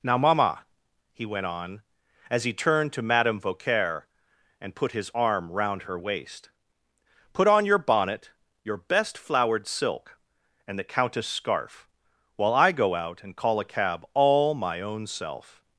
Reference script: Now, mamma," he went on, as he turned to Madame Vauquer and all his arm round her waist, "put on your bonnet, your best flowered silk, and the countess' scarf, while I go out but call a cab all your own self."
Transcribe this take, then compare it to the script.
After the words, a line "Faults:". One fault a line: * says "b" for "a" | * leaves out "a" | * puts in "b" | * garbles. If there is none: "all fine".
Now, mamma," he went on, as he turned to Madame Vauquer and put his arm round her waist, "put on your bonnet, your best flowered silk, and the countess' scarf, while I go out and call a cab all my own self."
Faults:
* says "put" for "all"
* says "and" for "but"
* says "my" for "your"